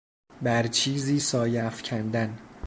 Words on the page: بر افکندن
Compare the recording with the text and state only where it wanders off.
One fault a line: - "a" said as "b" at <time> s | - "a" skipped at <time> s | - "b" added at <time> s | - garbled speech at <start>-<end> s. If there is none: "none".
- "چیزی سایه" added at 0.7 s